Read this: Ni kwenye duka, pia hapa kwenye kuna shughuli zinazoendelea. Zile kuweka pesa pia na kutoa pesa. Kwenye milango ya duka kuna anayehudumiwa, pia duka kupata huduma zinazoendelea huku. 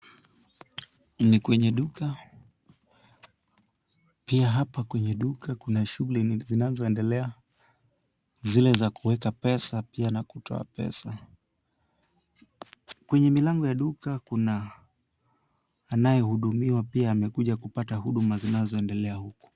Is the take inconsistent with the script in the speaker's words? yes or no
yes